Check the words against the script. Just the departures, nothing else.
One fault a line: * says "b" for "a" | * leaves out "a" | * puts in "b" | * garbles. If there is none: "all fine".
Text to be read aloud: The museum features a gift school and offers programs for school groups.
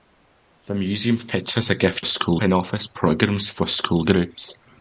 all fine